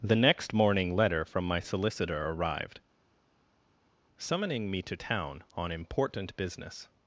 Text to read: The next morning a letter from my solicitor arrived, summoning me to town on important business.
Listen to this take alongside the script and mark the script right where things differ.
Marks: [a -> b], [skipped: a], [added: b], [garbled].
The next morning [skipped: a] letter from my solicitor arrived, summoning me to town on important business.